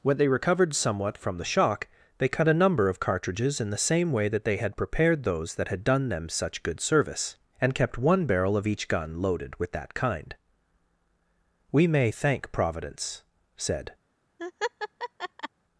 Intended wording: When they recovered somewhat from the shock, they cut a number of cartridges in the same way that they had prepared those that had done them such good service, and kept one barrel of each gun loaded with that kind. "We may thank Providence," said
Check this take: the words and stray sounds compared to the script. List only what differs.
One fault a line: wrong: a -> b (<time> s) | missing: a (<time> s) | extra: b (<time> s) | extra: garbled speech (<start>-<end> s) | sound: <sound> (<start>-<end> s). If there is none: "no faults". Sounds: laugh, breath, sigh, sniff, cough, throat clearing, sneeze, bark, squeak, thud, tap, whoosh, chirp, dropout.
sound: laugh (14.4-15.5 s)